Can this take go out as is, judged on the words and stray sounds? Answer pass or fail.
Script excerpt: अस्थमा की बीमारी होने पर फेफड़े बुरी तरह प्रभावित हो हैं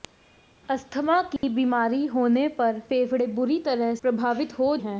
fail